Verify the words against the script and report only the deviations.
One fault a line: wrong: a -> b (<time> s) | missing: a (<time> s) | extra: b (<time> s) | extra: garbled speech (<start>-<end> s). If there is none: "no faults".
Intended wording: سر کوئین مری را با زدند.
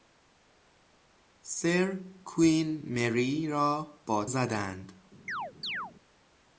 no faults